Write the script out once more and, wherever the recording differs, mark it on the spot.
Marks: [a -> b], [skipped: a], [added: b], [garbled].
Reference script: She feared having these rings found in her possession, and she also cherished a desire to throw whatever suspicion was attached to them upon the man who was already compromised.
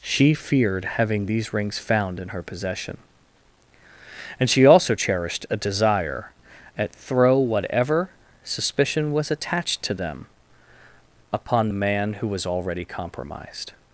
She feared having these rings found in her possession, and she also cherished a desire [to -> at] throw whatever suspicion was attached to them upon the man who was already compromised.